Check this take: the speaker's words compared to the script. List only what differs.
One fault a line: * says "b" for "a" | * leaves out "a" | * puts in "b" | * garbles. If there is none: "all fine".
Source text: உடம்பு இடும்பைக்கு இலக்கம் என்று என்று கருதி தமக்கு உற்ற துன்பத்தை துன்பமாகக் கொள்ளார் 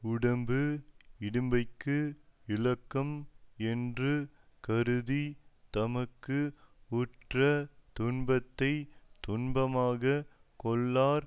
* leaves out "என்று"